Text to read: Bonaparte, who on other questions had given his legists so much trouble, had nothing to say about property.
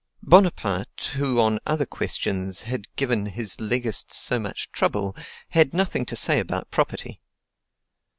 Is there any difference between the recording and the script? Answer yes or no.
no